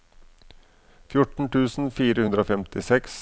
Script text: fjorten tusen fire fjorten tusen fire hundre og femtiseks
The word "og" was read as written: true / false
true